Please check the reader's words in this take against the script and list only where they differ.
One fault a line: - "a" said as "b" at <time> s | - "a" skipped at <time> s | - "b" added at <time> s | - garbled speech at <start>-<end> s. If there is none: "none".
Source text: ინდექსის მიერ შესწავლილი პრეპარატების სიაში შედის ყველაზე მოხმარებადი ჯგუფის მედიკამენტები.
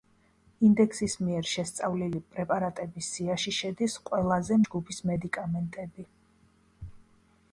- "მოხმარებადი" skipped at 4.6 s